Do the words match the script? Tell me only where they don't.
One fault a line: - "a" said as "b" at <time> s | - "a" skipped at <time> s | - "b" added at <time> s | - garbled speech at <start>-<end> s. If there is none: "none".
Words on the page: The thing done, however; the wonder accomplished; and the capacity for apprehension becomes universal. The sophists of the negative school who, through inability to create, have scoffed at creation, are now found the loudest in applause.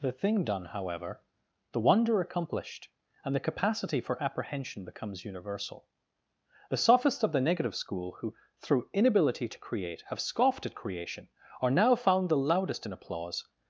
none